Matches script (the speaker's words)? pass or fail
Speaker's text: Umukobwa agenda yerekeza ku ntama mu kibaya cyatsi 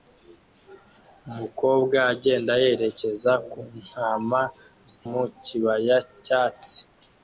pass